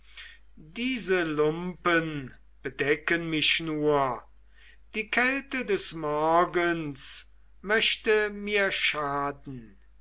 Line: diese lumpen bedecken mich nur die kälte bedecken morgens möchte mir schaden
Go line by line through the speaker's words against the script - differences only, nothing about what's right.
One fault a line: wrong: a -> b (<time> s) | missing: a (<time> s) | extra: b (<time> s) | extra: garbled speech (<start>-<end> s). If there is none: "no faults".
wrong: bedecken -> des (5.6 s)